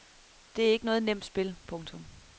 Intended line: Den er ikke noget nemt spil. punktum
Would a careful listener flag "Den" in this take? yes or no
yes